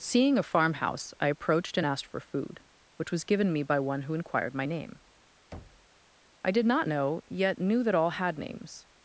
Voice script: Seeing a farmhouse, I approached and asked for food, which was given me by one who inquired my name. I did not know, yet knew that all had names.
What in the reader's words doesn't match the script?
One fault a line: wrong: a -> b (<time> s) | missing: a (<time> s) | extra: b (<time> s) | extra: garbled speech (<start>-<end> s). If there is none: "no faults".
no faults